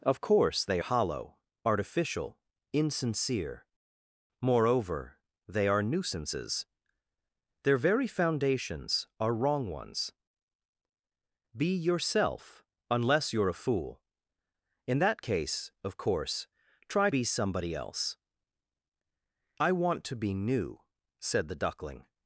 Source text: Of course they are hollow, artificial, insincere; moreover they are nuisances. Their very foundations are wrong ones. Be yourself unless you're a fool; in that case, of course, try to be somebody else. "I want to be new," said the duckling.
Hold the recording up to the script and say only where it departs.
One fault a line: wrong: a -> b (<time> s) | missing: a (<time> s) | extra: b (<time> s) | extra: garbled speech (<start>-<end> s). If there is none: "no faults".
missing: are (0.8 s)
missing: to (17.1 s)